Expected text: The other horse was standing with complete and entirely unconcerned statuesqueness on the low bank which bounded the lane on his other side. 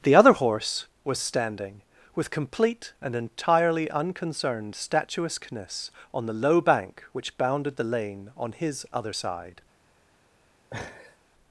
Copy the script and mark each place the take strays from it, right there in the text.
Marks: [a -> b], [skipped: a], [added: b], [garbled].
The other horse was standing with complete and entirely unconcerned statuesqueness on the low bank which bounded the lane on his other side.